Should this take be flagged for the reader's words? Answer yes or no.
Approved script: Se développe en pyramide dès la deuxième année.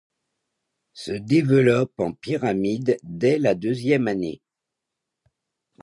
no